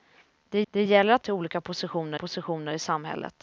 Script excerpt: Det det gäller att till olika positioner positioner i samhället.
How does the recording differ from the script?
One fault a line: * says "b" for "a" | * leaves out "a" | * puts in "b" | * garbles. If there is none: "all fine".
all fine